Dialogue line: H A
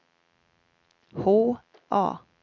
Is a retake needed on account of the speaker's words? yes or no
no